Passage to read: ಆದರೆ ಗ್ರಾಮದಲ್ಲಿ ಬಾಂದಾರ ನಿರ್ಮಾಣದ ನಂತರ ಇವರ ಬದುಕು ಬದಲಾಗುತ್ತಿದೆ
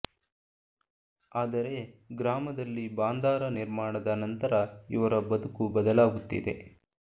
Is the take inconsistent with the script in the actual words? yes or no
no